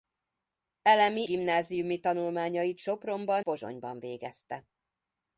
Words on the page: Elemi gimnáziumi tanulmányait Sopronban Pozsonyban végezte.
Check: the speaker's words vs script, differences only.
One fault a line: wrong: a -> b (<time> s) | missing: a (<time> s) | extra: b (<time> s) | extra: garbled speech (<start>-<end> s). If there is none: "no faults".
no faults